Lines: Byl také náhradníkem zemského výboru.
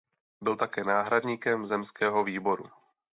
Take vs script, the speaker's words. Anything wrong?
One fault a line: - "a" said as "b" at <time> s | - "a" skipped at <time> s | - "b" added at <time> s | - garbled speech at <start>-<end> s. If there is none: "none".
none